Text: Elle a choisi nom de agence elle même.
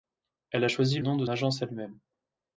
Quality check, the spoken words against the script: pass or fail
pass